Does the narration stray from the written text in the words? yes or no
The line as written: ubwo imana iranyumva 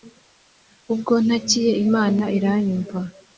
yes